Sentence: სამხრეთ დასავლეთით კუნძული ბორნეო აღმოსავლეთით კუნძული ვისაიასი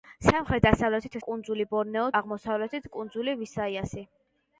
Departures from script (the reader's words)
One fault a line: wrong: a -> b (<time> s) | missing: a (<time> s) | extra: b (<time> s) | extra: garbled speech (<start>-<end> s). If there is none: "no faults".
no faults